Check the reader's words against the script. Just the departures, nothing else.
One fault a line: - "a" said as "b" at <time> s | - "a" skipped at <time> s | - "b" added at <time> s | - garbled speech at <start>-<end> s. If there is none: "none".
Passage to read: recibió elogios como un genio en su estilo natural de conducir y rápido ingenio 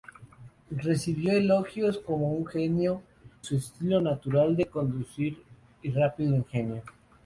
- "en" skipped at 3.0 s